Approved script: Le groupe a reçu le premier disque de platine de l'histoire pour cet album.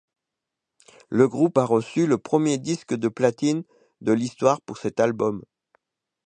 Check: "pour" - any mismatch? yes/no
no